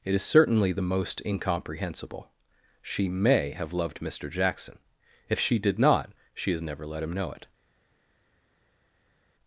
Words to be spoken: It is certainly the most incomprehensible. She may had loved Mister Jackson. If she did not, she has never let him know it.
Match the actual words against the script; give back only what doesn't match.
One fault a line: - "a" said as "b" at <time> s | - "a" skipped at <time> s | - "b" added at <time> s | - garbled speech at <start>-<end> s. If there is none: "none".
- "had" said as "have" at 3.5 s